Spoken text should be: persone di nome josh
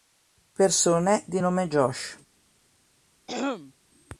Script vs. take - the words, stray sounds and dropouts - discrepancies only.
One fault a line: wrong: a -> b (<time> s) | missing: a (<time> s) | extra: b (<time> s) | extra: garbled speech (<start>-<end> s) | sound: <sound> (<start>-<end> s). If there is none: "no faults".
sound: throat clearing (3.3-3.7 s)